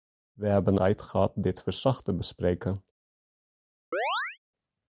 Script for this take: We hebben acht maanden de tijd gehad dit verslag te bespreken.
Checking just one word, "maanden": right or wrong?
wrong